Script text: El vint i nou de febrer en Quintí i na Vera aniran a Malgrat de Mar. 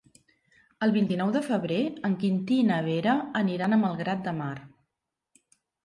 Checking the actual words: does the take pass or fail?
pass